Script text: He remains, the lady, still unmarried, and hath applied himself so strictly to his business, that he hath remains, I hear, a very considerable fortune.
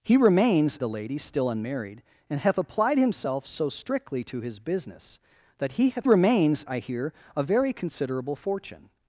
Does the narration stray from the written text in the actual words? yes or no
no